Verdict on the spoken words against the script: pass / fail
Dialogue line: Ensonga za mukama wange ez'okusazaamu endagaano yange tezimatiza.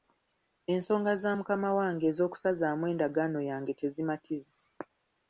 pass